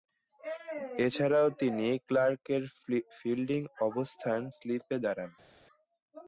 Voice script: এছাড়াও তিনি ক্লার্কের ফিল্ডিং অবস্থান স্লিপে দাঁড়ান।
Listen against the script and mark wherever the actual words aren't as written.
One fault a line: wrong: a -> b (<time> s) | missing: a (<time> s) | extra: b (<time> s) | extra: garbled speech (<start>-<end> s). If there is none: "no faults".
no faults